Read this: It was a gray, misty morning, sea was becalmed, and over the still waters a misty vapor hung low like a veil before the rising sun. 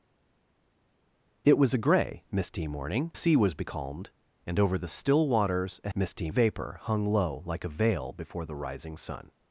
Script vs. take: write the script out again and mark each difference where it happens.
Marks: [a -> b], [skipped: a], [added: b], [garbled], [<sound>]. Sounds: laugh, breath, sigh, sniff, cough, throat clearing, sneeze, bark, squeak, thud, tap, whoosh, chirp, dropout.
It was a gray, misty morning, sea was becalmed, and over the still waters a misty vapor hung low like a veil before the rising sun.